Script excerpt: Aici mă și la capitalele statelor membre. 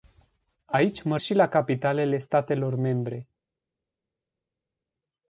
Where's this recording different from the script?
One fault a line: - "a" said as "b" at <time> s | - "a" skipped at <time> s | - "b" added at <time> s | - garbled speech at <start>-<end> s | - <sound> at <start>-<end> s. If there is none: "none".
none